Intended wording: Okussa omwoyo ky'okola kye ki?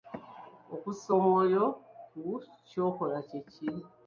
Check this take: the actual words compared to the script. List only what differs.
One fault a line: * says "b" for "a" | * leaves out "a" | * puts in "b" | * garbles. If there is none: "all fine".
* puts in "ku"